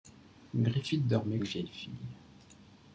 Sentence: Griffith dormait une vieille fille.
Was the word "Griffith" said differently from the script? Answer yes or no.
no